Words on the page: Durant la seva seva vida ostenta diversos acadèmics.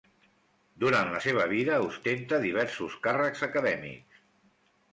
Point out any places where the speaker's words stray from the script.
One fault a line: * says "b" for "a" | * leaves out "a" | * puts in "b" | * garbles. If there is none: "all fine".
* leaves out "seva"
* puts in "càrrecs"